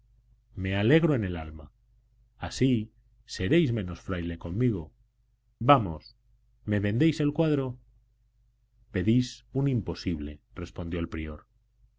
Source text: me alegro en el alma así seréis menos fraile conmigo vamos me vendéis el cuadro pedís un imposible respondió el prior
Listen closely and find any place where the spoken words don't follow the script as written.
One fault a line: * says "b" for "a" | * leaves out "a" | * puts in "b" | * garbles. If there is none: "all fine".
all fine